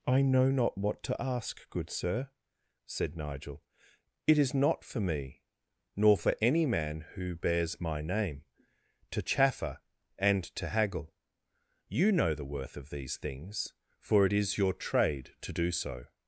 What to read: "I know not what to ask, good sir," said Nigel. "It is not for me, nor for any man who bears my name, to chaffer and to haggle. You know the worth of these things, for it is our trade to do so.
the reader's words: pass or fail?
fail